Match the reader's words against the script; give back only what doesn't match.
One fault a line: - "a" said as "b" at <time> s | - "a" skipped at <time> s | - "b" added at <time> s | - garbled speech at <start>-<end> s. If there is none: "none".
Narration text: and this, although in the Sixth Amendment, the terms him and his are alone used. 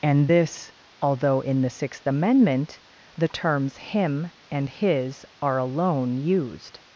none